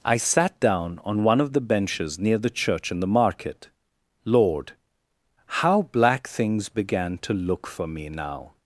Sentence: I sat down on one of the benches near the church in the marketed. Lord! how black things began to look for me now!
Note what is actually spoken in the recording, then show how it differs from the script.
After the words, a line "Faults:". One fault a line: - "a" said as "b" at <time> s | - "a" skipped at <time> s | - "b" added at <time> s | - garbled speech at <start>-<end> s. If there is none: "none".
I sat down on one of the benches near the church in the market. Lord! how black things began to look for me now!
Faults:
- "marketed" said as "market" at 3.1 s